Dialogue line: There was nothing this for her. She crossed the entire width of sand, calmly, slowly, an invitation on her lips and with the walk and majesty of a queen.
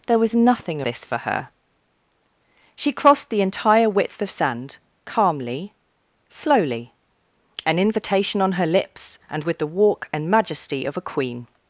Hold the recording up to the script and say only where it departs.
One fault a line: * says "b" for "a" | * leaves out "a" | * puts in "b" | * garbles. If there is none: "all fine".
all fine